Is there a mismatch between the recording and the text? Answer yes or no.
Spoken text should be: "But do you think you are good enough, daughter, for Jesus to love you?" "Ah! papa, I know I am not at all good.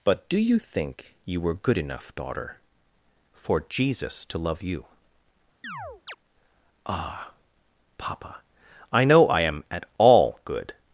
yes